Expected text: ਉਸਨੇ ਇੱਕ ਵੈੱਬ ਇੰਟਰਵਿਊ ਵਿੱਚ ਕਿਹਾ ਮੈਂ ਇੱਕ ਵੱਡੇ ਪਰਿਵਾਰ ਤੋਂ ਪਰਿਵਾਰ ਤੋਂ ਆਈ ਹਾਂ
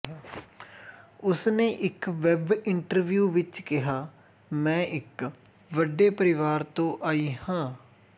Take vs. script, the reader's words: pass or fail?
fail